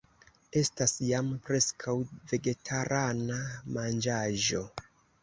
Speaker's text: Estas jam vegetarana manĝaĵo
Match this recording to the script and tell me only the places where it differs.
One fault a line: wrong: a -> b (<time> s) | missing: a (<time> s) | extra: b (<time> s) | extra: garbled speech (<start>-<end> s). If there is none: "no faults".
extra: preskaŭ (1.5 s)